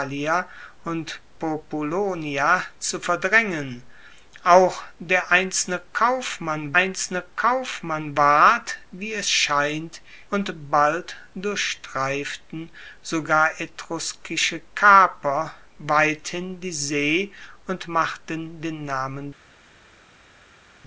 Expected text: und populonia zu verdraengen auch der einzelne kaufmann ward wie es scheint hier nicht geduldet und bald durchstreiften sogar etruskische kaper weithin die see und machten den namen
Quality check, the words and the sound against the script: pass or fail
fail